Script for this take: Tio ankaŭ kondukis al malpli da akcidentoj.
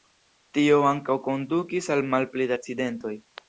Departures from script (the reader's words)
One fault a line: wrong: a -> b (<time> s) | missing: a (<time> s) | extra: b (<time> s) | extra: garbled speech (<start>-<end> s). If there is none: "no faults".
no faults